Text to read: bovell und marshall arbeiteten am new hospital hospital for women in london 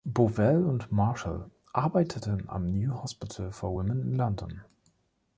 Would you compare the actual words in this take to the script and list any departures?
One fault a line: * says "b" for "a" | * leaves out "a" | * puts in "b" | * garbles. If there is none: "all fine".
* leaves out "hospital"